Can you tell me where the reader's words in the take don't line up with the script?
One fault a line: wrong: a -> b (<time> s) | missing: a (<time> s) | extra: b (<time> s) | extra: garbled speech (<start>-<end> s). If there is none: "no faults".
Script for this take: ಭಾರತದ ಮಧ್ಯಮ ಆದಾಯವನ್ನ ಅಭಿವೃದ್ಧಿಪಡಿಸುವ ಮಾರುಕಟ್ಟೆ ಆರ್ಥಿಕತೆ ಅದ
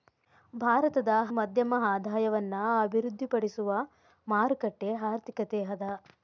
no faults